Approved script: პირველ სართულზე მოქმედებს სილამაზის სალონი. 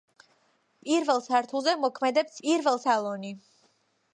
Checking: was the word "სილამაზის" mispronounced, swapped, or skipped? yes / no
yes